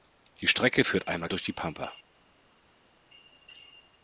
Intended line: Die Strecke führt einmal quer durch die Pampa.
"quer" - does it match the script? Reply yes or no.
no